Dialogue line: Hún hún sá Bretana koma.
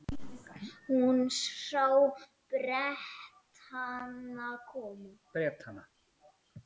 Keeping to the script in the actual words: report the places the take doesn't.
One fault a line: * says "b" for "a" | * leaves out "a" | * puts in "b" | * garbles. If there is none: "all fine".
* leaves out "hún"